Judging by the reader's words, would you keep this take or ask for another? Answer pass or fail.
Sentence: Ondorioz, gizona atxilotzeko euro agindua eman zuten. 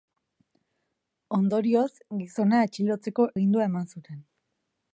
fail